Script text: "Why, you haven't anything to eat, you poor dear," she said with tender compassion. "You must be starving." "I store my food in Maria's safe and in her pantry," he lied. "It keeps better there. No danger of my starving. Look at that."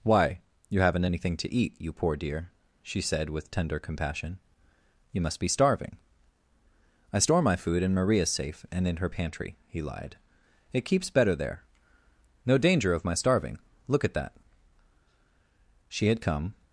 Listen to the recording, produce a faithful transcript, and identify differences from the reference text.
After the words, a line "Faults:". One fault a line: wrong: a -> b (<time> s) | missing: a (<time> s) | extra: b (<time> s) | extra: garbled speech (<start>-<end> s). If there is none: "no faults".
"Why, you haven't anything to eat, you poor dear," she said with tender compassion. "You must be starving." "I store my food in Maria's safe and in her pantry," he lied. "It keeps better there. No danger of my starving. Look at that." She had come
Faults:
extra: She had come (15.9 s)